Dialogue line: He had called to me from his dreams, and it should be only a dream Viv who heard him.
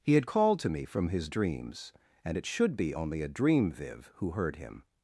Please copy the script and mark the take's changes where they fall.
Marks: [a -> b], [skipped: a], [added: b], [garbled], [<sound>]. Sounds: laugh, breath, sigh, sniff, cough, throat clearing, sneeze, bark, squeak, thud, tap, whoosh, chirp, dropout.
He had called to me from his dreams, and it should be only a dream Viv who heard him.